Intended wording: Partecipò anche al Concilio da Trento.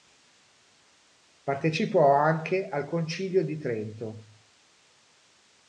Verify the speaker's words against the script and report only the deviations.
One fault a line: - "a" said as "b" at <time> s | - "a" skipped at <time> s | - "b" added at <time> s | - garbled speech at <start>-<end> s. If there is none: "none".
- "da" said as "di" at 3.5 s